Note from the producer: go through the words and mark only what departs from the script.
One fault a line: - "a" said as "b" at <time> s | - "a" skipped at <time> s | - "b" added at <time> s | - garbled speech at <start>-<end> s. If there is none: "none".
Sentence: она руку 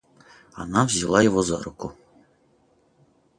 - "взяла его за" added at 0.8 s